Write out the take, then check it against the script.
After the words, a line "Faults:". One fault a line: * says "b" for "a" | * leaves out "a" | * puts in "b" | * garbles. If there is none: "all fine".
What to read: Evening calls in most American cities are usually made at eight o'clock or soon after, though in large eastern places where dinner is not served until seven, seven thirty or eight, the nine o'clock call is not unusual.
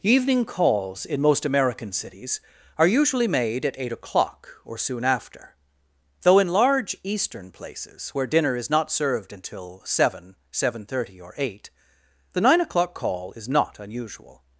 Evening calls in most American cities are usually made at eight o'clock or soon after, though in large eastern places where dinner is not served until seven, seven thirty or eight, the nine o'clock call is not unusual.
Faults:
all fine